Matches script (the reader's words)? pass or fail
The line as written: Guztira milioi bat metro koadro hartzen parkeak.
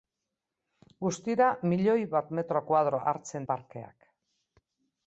pass